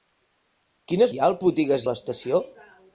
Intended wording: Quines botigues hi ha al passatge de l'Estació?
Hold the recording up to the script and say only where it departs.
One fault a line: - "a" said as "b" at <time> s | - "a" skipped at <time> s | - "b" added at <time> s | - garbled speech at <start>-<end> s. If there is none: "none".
- "botigues" skipped at 1.1 s
- "passatge" said as "botigues" at 1.5 s